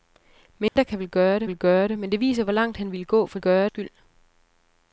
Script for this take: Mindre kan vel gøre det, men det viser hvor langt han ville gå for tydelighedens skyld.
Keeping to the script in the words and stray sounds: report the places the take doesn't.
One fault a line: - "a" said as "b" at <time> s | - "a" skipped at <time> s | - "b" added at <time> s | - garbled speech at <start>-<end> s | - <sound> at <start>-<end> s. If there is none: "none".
- dropout at 0.7-0.8 s
- "vel gøre det" added at 1.5 s
- "tydelighedens" said as "gøre" at 3.4 s